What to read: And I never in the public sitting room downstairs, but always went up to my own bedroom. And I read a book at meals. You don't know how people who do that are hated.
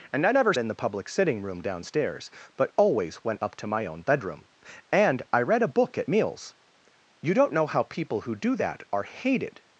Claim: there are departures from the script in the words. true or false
false